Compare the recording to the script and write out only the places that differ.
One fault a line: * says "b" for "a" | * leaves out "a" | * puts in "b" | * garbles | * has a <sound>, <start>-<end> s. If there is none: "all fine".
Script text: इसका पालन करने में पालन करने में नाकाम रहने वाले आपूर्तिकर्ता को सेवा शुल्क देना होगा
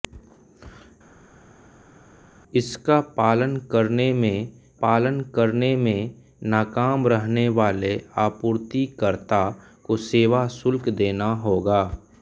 all fine